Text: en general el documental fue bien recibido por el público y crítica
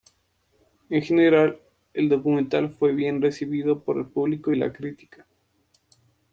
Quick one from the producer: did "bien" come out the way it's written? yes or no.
yes